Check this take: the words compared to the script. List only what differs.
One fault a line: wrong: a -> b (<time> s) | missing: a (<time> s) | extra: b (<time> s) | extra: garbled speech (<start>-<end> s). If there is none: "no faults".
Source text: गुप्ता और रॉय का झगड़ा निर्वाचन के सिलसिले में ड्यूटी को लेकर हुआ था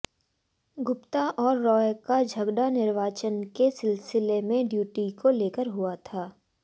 no faults